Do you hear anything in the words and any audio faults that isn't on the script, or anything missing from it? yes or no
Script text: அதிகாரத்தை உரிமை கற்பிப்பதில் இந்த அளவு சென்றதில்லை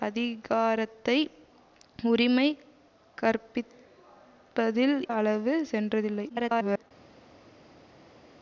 yes